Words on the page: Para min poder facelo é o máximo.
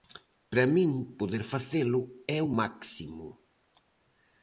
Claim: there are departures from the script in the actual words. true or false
false